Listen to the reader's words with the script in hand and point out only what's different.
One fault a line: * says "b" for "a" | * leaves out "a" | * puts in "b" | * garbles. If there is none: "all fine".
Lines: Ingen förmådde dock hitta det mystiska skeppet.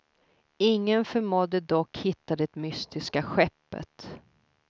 all fine